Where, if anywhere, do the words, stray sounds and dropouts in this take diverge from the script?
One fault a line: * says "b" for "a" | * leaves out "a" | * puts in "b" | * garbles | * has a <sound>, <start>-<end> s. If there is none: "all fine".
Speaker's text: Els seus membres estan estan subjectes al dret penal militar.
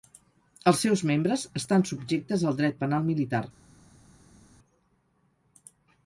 * leaves out "estan"